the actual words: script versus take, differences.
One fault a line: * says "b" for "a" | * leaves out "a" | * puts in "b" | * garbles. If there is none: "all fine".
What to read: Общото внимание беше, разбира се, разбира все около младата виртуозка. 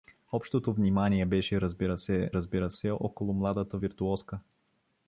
all fine